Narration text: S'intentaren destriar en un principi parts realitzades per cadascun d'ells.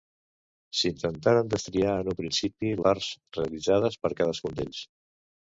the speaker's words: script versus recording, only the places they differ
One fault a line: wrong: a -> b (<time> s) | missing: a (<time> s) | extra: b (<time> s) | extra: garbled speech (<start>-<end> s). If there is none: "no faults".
no faults